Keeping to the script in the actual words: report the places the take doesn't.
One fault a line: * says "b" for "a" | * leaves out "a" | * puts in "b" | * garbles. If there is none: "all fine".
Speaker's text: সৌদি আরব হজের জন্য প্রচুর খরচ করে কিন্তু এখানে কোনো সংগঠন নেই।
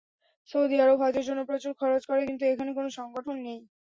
all fine